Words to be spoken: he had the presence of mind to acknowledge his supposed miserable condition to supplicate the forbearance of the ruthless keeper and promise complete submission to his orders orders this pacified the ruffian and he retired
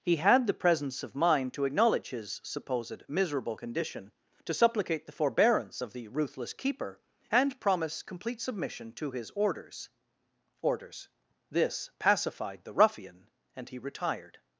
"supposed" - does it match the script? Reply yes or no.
yes